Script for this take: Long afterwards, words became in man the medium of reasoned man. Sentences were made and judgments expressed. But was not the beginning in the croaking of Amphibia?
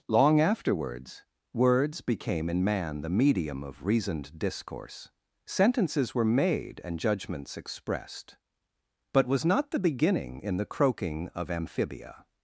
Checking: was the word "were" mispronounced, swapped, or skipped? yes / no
no